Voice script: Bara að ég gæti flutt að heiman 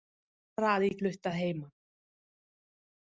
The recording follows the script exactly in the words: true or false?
false